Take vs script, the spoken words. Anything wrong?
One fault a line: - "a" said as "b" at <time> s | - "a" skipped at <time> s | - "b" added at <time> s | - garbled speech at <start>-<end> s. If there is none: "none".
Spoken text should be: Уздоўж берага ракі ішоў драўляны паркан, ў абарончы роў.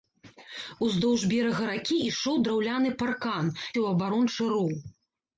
none